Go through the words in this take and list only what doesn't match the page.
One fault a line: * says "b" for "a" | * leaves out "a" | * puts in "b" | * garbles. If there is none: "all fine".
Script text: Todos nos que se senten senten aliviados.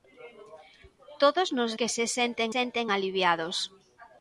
all fine